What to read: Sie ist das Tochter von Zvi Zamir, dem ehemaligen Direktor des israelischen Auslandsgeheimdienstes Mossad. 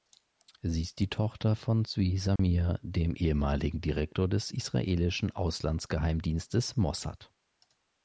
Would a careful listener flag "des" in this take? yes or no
no